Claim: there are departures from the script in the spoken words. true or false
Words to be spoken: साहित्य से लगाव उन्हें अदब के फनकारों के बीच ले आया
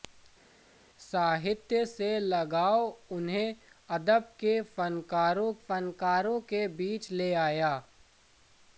true